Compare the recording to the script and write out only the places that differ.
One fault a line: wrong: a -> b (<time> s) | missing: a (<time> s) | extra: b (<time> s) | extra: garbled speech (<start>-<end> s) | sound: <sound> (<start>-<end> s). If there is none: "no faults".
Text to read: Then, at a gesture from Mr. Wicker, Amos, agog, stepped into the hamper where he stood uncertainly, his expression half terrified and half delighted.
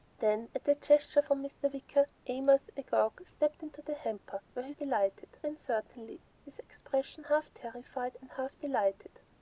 wrong: stood -> delighted (4.7 s)